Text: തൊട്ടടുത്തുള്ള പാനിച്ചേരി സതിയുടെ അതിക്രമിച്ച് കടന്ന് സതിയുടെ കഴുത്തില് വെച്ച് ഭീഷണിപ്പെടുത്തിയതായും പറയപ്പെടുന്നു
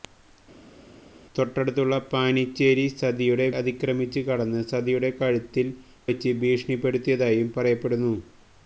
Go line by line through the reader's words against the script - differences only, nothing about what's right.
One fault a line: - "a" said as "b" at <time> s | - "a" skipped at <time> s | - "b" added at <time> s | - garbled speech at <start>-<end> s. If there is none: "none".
none